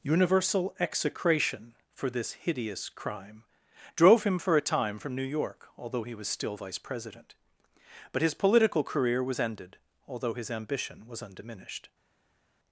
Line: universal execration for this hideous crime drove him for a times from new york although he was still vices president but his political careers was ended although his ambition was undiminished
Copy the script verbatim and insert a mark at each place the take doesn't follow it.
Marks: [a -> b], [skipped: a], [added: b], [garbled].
universal execration for this hideous crime drove him for a [times -> time] from new york although he was still [vices -> vice] president but his political [careers -> career] was ended although his ambition was undiminished